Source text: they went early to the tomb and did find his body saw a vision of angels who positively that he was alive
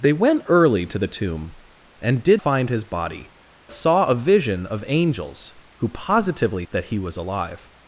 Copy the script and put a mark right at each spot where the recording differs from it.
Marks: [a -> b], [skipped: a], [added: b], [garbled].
they went early to the tomb and did find his body saw a vision of angels who positively that he was alive